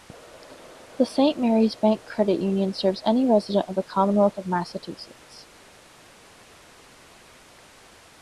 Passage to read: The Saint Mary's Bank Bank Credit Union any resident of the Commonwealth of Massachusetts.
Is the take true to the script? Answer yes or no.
no